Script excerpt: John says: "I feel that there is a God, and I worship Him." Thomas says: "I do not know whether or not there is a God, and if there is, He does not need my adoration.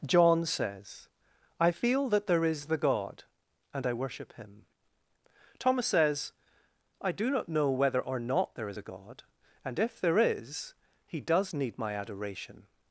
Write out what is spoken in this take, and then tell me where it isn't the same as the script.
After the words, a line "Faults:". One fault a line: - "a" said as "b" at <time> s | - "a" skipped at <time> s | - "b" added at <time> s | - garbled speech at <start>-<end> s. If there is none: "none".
John says: "I feel that there is the God, and I worship Him." Thomas says: "I do not know whether or not there is a God, and if there is, He does need my adoration.
Faults:
- "a" said as "the" at 2.7 s
- "not" skipped at 11.5 s